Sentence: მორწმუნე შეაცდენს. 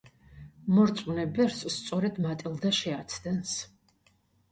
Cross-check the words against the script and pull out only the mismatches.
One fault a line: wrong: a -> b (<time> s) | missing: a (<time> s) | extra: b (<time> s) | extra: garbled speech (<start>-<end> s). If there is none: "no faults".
extra: ბერს სწორედ მატილდა (1.4 s)